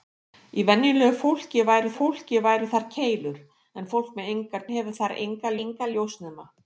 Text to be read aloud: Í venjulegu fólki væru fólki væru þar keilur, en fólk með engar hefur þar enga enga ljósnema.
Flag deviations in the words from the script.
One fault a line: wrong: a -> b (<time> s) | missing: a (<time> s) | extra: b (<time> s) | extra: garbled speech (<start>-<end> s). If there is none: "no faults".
no faults